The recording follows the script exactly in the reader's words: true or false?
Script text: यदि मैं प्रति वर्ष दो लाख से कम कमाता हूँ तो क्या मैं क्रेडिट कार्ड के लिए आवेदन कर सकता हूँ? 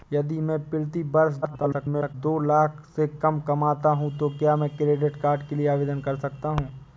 false